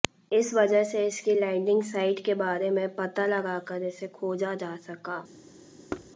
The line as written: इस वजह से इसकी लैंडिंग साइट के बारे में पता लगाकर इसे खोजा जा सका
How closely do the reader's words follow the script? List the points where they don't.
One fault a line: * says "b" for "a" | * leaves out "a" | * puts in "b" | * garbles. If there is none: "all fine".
all fine